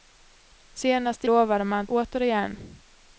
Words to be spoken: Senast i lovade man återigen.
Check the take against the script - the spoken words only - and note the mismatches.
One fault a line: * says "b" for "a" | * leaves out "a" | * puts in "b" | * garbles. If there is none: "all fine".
all fine